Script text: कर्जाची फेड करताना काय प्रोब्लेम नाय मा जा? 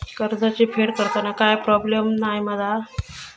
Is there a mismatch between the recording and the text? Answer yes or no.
no